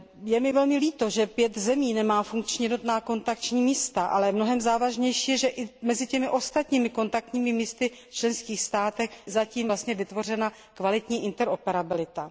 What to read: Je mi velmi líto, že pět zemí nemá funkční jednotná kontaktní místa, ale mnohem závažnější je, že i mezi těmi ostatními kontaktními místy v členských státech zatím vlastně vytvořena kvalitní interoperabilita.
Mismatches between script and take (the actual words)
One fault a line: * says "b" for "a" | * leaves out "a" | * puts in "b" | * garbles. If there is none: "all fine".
all fine